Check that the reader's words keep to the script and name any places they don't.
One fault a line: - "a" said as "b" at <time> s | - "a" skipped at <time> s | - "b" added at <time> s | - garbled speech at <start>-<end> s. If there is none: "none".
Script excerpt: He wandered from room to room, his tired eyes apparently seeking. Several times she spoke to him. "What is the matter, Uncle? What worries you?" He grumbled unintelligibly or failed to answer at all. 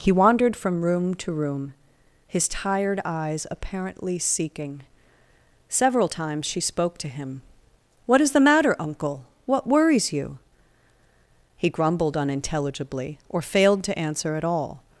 none